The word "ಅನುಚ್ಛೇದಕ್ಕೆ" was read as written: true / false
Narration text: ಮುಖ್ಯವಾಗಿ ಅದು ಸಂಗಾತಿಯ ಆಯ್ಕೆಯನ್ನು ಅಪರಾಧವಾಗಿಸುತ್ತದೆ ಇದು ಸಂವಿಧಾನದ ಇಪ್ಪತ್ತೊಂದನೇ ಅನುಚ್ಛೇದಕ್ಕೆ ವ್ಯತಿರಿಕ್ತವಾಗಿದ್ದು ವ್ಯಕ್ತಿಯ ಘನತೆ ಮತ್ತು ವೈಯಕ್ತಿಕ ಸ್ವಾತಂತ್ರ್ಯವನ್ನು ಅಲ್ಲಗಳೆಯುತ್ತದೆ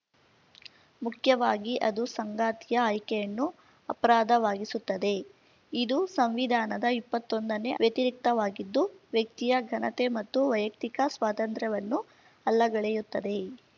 false